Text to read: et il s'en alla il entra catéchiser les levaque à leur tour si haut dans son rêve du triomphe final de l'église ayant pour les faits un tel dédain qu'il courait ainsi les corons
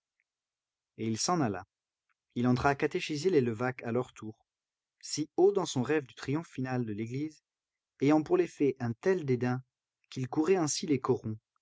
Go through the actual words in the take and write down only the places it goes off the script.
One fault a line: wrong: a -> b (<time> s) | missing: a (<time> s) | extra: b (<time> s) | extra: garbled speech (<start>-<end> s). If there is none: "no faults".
no faults